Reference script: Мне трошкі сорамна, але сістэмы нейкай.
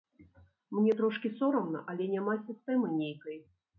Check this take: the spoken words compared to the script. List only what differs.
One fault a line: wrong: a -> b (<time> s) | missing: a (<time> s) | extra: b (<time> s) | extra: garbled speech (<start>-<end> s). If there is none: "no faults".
extra: няма (2.2 s)